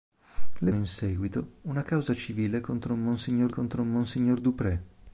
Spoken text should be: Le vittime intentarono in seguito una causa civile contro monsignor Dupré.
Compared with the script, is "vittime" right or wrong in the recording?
wrong